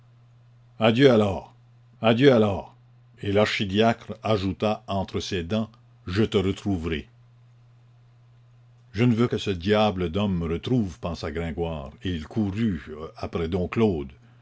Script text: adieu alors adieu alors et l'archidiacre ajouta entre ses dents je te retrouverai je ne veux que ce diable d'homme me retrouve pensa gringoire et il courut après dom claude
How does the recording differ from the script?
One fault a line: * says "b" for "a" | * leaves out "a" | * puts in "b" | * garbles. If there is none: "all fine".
all fine